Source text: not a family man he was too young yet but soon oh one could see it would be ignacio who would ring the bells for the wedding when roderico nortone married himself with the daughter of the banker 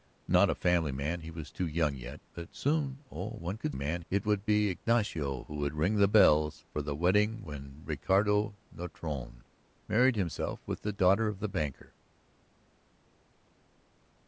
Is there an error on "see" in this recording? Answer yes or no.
yes